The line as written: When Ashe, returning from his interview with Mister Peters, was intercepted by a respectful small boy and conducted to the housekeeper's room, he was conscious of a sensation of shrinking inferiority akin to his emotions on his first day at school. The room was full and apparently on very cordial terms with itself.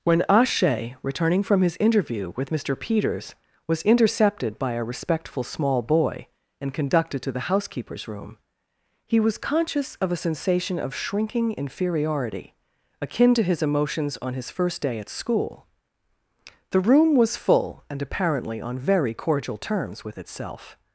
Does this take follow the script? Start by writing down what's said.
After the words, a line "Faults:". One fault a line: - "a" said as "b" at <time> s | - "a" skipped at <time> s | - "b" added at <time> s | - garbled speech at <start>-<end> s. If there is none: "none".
When Ashe, returning from his interview with Mister Peters, was intercepted by a respectful small boy and conducted to the housekeeper's room, he was conscious of a sensation of shrinking inferiority akin to his emotions on his first day at school. The room was full and apparently on very cordial terms with itself.
Faults:
none